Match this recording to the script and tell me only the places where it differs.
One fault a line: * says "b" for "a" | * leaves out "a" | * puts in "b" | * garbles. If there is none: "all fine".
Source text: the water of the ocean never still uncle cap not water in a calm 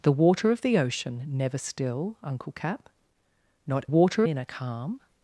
all fine